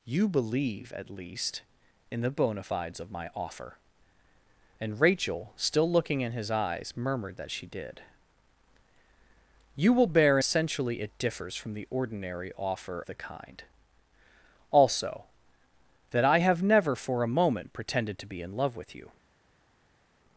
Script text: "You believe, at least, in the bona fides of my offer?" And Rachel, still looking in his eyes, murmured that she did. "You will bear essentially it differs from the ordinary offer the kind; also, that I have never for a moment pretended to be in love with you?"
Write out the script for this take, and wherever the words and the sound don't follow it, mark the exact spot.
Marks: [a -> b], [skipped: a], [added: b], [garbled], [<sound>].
"You believe, at least, in the bona fides of my offer?" And Rachel, still looking in his eyes, murmured that she did. "You will bear essentially it differs from the ordinary offer the kind; also, that I have never for a moment pretended to be in love with you?"